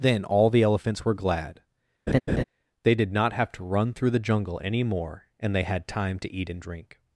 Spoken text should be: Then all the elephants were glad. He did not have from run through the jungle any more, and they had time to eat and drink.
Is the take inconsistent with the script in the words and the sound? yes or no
yes